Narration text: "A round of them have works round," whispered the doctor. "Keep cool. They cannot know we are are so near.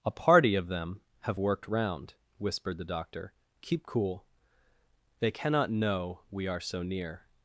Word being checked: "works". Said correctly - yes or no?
no